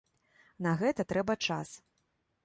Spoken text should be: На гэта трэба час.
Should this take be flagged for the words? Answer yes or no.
no